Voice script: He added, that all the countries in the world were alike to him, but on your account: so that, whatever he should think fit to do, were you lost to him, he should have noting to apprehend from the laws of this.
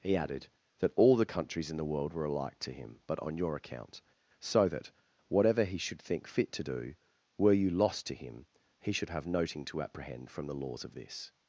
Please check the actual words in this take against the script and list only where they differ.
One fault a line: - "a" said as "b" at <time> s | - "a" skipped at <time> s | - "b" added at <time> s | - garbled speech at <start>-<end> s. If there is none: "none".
none